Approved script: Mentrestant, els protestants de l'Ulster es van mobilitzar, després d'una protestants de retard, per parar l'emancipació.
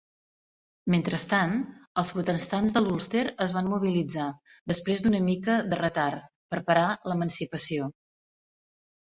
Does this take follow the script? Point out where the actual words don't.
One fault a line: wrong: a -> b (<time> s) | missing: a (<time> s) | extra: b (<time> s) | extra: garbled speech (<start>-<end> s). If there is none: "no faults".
wrong: protestants -> mica (5.3 s)